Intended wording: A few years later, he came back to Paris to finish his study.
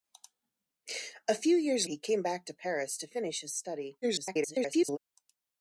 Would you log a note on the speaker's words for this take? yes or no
yes